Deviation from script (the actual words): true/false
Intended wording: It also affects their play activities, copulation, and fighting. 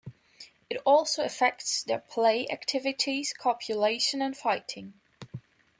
false